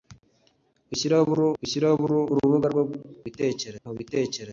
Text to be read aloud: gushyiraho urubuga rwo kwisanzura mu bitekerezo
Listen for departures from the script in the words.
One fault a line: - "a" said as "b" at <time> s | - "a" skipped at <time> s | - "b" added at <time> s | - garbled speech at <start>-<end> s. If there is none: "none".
- "gushyiraho" added at 1.6 s
- "kwisanzura" said as "bitekerezo" at 3.2 s